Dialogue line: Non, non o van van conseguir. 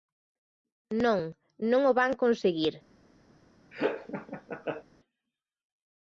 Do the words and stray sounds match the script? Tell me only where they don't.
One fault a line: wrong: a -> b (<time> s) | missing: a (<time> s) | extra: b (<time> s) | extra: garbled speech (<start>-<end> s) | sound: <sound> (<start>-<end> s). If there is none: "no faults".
missing: van (2.1 s)
sound: laugh (3.7-4.8 s)